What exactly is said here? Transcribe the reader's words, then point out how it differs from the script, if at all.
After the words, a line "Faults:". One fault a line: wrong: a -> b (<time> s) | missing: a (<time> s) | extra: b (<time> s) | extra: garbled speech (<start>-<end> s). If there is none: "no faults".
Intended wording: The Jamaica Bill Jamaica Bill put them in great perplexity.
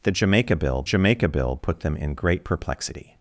The Jamaica Bill Jamaica Bill put them in great perplexity.
Faults:
no faults